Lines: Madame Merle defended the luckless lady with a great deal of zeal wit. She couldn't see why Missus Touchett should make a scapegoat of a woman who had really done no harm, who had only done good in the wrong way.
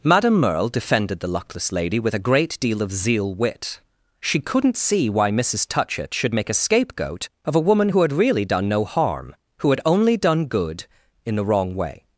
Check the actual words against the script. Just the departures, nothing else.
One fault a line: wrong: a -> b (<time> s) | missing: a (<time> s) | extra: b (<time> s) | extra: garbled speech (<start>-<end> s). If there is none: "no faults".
no faults